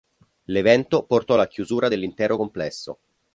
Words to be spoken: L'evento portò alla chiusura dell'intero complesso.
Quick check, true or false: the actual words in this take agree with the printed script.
true